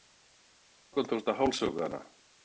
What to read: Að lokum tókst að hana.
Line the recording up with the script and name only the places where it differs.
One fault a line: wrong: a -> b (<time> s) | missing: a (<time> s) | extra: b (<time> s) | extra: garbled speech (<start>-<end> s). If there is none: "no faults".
extra: hálshöggva (1.4 s)